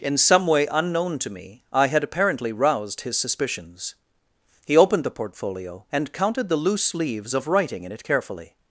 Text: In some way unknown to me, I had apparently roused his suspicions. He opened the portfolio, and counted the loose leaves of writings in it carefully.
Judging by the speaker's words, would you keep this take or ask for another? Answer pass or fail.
fail